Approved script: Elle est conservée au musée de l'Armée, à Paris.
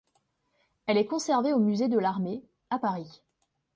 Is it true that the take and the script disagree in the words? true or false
false